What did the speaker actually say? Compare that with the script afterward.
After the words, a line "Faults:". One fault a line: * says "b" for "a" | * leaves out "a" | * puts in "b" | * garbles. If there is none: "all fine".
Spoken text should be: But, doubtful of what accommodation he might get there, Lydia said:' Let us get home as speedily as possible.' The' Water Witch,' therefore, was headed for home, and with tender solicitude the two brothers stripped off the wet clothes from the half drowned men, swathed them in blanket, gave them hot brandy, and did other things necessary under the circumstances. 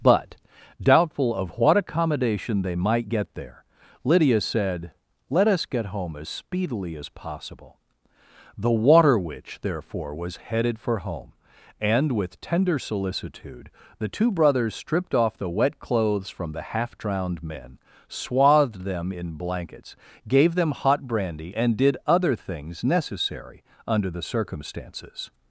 But, doubtful of what accommodation they might get there, Lydia said:' Let us get home as speedily as possible.' The' Water Witch,' therefore, was headed for home, and with tender solicitude the two brothers stripped off the wet clothes from the half drowned men, swathed them in blankets, gave them hot brandy, and did other things necessary under the circumstances.
Faults:
* says "they" for "he"
* says "blankets" for "blanket"